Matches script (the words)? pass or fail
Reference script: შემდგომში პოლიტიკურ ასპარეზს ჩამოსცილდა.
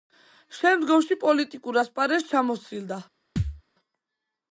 pass